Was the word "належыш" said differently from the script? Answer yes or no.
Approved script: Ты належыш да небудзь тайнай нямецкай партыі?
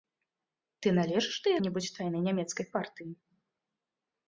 no